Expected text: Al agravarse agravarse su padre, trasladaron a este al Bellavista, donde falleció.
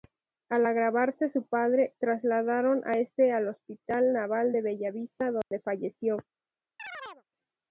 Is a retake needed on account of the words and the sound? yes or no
yes